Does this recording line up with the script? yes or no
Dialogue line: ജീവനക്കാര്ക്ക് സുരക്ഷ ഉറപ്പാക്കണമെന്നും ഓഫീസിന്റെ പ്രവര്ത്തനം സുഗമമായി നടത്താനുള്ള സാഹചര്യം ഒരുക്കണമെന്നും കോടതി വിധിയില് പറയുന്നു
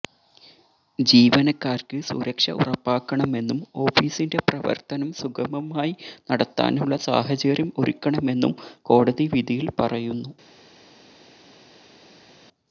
yes